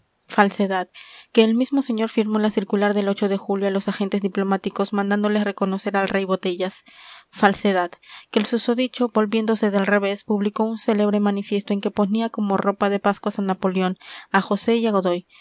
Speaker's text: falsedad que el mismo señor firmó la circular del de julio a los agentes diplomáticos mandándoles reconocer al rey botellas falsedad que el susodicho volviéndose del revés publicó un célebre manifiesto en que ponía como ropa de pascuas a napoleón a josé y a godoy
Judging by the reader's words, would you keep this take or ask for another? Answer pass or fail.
pass